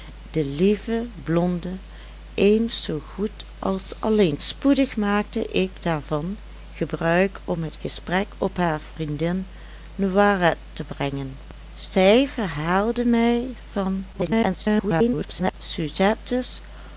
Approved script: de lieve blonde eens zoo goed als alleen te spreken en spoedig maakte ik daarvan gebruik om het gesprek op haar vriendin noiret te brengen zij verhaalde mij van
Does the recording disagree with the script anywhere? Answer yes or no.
yes